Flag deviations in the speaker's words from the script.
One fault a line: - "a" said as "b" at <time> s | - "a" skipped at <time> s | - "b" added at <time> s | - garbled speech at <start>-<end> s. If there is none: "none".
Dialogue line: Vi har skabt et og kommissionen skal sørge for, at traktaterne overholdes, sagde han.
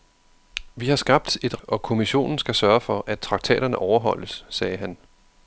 none